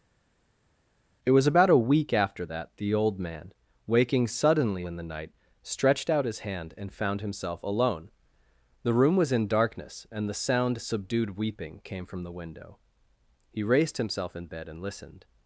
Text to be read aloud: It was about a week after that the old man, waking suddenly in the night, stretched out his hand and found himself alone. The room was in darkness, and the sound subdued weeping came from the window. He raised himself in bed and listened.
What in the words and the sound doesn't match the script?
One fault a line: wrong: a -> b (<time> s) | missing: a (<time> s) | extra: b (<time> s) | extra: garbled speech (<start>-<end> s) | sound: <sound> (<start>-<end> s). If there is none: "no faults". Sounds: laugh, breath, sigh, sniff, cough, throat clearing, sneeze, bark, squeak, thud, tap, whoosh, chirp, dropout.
no faults